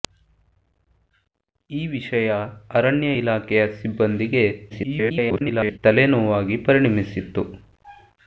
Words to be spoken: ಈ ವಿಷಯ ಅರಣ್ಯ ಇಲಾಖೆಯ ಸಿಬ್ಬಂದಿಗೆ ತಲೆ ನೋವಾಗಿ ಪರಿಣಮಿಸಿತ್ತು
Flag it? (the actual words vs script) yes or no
yes